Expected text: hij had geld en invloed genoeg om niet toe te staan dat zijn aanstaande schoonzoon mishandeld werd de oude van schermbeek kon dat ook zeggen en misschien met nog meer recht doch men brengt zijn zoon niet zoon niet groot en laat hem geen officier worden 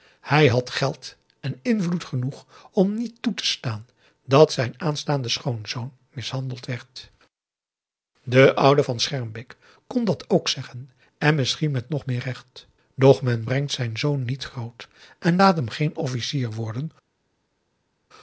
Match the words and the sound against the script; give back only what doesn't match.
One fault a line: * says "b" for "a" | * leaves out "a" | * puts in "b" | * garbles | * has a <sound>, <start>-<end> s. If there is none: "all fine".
* leaves out "zoon niet"